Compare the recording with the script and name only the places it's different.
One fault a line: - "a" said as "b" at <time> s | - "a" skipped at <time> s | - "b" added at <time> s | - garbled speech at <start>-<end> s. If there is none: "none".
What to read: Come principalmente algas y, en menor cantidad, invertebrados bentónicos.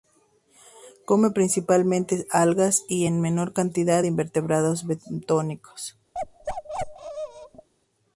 none